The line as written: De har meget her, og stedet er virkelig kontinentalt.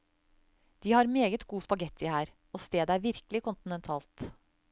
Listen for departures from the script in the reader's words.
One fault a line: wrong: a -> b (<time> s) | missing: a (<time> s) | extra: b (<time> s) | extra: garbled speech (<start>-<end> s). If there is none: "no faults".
extra: god spaghetti (1.5 s)